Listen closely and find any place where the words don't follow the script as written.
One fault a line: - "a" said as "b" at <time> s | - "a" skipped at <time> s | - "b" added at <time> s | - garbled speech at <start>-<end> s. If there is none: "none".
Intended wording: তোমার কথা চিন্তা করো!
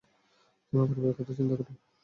- "পরিবারের" added at 0.9 s